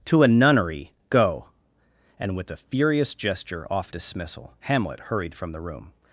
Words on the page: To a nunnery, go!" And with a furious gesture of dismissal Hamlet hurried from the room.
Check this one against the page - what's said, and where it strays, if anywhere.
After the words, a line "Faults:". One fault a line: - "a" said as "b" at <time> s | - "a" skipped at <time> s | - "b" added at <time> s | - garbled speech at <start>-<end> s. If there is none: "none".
To a nunnery, go!" And with a furious gesture off dismissal Hamlet hurried from the room.
Faults:
- "of" said as "off" at 3.7 s